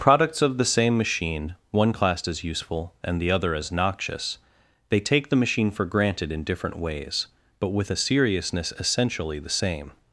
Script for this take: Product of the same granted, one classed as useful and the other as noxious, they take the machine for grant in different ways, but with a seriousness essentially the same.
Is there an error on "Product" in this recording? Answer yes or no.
yes